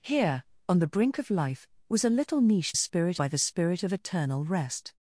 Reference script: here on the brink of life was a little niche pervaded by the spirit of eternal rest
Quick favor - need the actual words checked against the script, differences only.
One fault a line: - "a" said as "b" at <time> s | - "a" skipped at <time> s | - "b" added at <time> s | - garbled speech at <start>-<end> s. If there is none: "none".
- "pervaded" said as "spirit" at 2.7 s